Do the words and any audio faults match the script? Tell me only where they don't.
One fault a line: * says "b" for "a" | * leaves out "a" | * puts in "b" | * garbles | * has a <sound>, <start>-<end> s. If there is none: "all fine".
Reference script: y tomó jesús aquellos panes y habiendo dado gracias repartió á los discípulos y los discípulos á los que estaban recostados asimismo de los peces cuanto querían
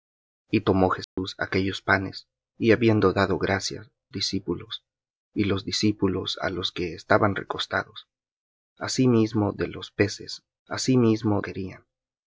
* has a dropout, 1.0-1.2 s
* leaves out "repartió á los"
* says "asimismo" for "cuanto"